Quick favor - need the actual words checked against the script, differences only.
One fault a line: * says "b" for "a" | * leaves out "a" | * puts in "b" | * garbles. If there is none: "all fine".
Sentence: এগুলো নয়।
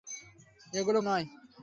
all fine